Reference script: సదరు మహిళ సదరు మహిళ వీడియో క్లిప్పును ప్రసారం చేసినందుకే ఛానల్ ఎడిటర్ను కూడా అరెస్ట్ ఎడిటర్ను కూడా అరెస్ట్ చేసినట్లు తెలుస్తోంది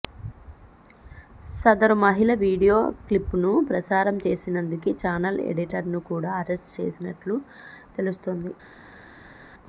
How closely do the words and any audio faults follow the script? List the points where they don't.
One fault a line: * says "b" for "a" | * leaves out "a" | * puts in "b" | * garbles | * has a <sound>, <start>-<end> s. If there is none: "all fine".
* leaves out "సదరు మహిళ"
* leaves out "ఎడిటర్ను కూడా అరెస్ట్"